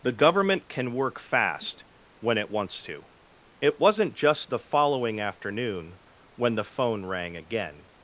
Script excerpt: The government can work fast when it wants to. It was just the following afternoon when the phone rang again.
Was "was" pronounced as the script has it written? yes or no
no